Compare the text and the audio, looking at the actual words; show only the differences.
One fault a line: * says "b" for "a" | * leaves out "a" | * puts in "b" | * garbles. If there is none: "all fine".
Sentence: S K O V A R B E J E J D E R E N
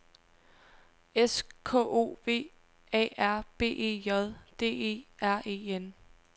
* leaves out "E J"